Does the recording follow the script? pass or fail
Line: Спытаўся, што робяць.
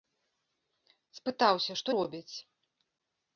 pass